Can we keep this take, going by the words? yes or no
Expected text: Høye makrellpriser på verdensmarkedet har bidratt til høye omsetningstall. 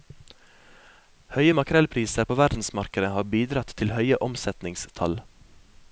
yes